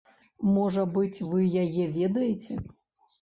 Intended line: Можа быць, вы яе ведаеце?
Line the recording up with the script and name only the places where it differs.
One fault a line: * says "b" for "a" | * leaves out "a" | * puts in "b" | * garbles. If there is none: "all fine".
all fine